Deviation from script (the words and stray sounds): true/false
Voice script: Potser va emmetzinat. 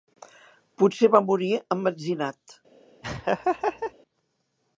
true